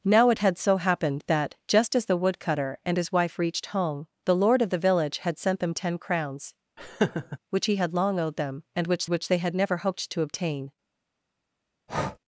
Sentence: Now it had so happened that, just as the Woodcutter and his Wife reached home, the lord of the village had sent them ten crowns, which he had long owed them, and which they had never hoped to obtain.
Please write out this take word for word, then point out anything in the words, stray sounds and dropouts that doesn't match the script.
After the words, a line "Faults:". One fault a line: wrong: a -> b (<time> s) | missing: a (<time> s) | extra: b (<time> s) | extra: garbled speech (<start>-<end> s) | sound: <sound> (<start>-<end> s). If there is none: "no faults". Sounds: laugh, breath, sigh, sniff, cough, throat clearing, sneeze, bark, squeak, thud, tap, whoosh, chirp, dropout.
Now it had so happened that, just as the Woodcutter and his Wife reached home, the lord of the village had sent them ten crowns, which he had long owed them, and which which they had never hoped to obtain.
Faults:
sound: laugh (6.8-7.4 s)
extra: which (9.1 s)
sound: breath (11.9-12.2 s)